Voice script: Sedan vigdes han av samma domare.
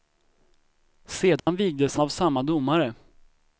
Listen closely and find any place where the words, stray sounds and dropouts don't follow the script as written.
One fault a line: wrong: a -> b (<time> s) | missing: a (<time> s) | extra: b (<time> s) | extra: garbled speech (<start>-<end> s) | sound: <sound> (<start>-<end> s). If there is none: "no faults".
sound: dropout (1.4-1.5 s)
missing: han (1.9 s)